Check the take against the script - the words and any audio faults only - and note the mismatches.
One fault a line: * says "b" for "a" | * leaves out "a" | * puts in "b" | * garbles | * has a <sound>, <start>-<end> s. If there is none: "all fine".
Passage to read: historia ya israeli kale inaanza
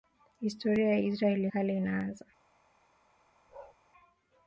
* has a bark, 3.5-3.8 s